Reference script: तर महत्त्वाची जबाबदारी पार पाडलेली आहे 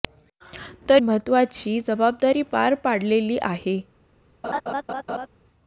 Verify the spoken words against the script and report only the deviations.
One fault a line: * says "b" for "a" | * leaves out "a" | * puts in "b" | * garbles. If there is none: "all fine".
all fine